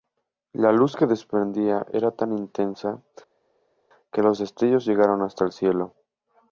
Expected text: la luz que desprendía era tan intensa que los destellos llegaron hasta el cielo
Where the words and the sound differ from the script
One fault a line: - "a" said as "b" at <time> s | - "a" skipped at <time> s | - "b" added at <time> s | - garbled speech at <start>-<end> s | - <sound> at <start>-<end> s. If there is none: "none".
none